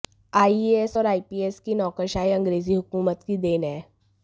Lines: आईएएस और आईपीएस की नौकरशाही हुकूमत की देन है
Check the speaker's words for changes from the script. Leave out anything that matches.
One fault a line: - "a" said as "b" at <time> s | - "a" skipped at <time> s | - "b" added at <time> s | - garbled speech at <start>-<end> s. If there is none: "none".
- "अंग्रेजी" added at 2.3 s